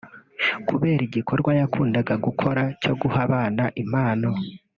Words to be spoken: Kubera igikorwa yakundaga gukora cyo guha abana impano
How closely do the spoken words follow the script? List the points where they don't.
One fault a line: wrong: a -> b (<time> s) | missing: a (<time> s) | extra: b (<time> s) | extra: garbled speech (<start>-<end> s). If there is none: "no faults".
no faults